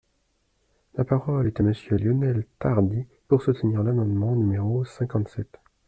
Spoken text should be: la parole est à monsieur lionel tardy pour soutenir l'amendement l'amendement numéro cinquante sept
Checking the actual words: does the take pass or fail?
fail